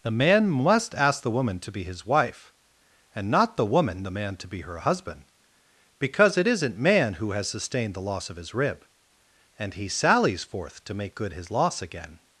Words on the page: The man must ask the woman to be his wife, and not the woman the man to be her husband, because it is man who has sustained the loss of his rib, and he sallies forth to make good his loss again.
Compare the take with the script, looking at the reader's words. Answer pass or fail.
fail